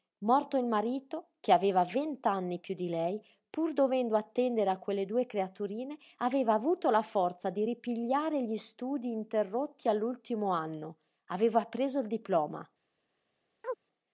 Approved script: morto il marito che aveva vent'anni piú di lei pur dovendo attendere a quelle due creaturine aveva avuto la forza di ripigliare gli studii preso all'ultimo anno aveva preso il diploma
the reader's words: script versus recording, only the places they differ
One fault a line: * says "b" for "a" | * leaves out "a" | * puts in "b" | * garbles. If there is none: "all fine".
* says "interrotti" for "preso"